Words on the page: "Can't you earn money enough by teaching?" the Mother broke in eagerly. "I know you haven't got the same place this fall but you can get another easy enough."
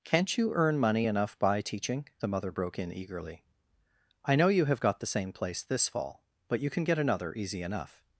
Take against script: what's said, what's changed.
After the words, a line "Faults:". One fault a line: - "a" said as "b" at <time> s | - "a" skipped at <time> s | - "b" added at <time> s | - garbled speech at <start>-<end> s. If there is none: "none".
"Can't you earn money enough by teaching?" the Mother broke in eagerly. "I know you have got the same place this fall but you can get another easy enough."
Faults:
- "haven't" said as "have" at 4.7 s